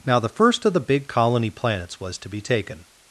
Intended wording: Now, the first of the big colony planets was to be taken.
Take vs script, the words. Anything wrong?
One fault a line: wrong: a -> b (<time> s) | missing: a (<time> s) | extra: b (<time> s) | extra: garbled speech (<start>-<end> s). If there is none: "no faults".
no faults